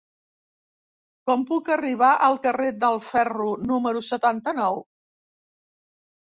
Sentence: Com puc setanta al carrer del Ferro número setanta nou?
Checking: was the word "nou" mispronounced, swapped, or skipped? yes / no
no